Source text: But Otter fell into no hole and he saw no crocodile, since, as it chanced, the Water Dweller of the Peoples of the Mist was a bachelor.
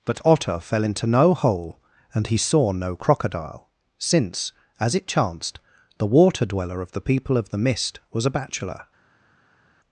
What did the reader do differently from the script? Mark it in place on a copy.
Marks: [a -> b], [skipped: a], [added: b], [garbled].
But Otter fell into no hole and he saw no crocodile, since, as it chanced, the Water Dweller of the [Peoples -> People] of the Mist was a bachelor.